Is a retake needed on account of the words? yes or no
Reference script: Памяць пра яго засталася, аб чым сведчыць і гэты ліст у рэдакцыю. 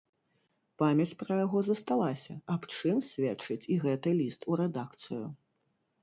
no